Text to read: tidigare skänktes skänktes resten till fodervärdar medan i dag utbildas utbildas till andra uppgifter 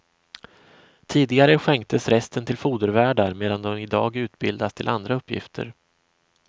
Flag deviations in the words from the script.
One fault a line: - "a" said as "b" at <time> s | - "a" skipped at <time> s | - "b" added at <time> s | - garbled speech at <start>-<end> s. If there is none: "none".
- "skänktes" skipped at 2.1 s
- "de" added at 3.6 s
- "utbildas" skipped at 4.7 s